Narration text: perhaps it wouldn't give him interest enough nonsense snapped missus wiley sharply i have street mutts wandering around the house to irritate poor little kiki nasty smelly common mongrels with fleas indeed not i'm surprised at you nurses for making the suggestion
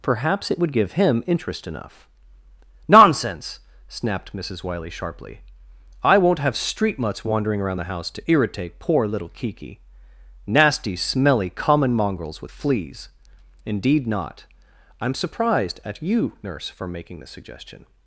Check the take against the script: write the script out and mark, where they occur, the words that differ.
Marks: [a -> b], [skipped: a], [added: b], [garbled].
perhaps it [wouldn't -> would] give him interest enough nonsense snapped missus wiley sharply i [added: won't] have street mutts wandering around the house to irritate poor little kiki nasty smelly common mongrels with fleas indeed not i'm surprised at you [nurses -> nurse] for making the suggestion